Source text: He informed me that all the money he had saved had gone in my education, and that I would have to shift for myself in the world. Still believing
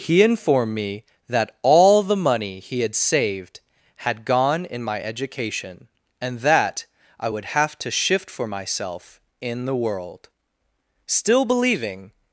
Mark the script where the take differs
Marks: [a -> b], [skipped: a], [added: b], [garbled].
He informed me that all the money he had saved had gone in my education, and that I would have to shift for myself in the world. Still believing